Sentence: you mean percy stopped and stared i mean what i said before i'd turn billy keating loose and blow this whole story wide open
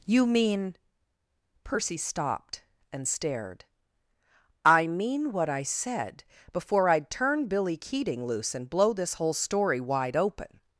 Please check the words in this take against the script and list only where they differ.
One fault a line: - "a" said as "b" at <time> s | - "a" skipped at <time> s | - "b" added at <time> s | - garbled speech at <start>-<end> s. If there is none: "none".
none